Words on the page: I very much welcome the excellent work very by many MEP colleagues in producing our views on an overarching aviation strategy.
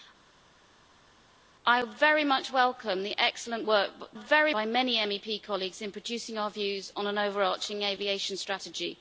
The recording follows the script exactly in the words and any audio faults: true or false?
true